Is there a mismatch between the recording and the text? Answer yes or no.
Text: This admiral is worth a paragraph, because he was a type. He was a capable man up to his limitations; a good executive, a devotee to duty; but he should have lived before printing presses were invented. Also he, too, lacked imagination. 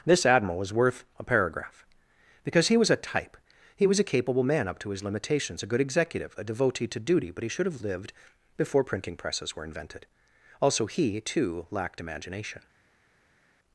yes